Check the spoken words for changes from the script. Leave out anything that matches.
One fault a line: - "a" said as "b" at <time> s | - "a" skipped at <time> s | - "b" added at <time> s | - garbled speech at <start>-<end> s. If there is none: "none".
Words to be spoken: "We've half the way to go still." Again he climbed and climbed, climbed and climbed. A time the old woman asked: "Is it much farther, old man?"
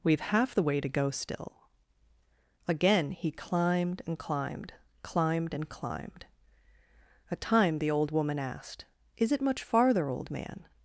none